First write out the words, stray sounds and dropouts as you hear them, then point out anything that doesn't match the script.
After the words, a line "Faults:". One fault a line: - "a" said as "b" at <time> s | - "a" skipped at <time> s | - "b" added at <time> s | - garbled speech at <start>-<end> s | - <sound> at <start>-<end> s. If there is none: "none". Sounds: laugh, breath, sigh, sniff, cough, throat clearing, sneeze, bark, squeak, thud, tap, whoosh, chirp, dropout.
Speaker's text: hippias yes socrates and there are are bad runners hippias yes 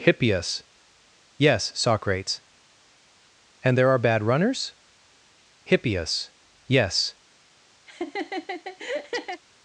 hippias yes socrates and there are bad runners hippias yes
Faults:
- "are" skipped at 4.0 s
- laugh at 7.9-9.4 s